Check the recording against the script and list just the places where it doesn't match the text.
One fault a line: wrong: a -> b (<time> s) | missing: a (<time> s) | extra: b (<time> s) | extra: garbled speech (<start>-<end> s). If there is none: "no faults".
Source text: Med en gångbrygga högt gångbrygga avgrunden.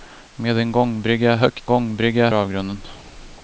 no faults